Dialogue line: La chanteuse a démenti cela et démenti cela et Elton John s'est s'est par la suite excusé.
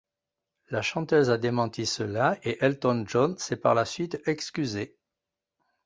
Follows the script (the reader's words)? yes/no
no